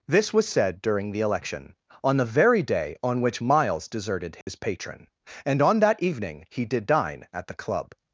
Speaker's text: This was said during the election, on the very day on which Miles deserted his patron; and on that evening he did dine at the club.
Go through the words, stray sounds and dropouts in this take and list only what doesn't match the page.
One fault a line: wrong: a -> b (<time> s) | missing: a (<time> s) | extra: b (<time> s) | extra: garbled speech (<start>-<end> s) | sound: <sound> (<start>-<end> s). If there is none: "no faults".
sound: dropout (4.4-4.5 s)